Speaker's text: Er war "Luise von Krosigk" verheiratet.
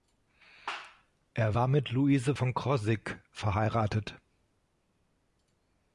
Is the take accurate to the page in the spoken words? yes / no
no